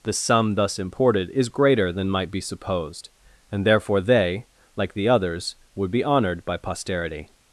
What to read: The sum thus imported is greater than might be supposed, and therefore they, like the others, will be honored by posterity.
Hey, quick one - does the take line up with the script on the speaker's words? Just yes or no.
no